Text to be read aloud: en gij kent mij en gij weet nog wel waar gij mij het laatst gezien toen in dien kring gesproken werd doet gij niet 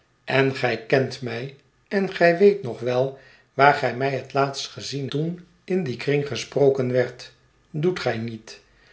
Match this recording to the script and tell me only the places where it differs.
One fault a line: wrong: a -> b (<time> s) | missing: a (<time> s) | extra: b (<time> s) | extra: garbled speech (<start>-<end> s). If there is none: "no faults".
no faults